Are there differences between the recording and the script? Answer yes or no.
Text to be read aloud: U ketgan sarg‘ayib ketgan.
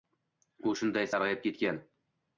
yes